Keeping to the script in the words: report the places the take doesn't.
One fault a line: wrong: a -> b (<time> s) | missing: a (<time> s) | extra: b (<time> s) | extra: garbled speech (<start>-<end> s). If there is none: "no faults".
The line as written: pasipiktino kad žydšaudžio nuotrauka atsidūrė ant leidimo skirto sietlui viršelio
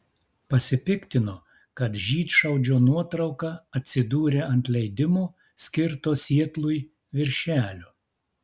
no faults